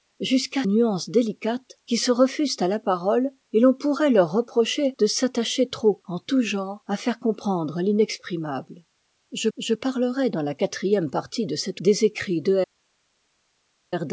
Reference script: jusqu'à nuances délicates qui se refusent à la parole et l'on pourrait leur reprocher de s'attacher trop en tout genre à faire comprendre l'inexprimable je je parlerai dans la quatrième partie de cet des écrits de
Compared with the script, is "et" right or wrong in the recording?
right